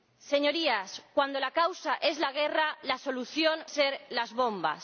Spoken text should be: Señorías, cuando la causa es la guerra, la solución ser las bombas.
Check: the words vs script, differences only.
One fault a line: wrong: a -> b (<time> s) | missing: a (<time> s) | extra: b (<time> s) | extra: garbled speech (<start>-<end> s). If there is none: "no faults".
no faults